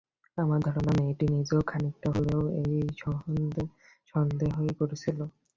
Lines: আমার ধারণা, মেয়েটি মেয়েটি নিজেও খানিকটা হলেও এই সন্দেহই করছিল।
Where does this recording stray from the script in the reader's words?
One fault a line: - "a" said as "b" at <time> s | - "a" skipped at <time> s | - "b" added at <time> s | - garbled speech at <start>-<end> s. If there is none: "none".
- "মেয়েটি" skipped at 1.2 s